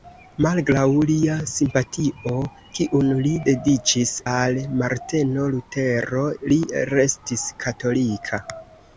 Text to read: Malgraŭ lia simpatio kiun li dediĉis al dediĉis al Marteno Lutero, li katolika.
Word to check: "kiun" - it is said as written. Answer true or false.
true